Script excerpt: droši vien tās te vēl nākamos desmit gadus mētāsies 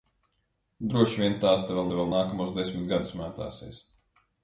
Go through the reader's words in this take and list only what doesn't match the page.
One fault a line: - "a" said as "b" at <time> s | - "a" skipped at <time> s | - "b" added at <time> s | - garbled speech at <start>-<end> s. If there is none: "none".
- "te vēl" added at 1.9 s